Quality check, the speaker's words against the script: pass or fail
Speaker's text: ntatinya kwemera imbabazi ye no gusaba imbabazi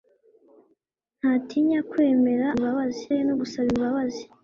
pass